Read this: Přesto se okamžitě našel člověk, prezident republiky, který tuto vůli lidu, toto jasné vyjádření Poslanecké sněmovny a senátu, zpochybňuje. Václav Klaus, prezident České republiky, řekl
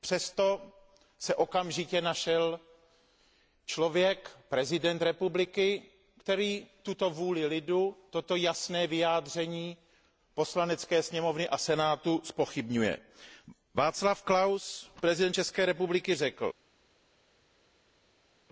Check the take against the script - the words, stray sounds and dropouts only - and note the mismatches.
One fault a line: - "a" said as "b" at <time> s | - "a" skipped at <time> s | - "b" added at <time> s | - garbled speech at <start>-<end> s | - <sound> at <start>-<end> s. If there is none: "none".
none